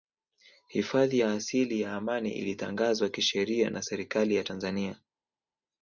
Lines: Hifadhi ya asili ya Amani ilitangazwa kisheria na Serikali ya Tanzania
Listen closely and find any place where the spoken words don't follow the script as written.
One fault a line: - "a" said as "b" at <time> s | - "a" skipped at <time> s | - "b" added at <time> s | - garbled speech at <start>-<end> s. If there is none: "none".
none